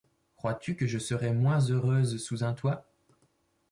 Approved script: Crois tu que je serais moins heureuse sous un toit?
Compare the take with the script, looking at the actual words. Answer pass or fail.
pass